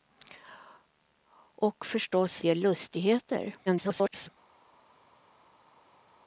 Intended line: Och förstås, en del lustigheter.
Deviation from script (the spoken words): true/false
true